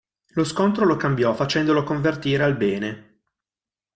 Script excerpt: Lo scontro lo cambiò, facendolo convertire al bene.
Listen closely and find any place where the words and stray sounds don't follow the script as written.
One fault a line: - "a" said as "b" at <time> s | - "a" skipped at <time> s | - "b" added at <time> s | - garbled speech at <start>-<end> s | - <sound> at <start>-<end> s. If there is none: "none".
none